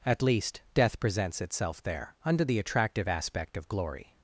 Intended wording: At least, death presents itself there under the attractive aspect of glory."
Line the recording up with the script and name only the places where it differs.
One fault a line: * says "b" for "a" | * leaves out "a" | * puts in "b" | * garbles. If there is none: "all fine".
all fine